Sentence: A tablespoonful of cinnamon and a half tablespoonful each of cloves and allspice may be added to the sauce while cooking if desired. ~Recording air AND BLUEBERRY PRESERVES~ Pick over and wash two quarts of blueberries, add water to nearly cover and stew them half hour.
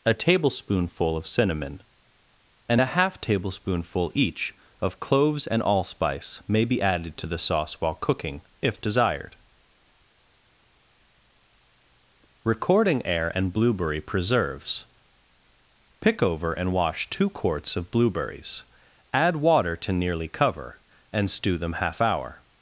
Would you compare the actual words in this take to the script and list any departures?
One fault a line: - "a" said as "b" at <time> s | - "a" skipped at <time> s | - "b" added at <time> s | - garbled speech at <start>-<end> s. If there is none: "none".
none